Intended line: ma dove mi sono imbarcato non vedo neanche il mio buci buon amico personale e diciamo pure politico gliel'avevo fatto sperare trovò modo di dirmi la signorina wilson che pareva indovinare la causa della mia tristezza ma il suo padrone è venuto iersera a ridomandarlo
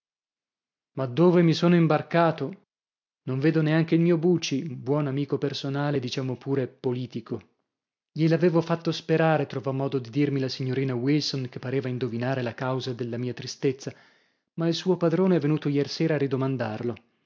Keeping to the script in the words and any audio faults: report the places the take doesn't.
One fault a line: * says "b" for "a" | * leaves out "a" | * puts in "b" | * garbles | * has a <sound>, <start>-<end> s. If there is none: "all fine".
all fine